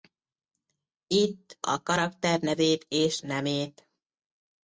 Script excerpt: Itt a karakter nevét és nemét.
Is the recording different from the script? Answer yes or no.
no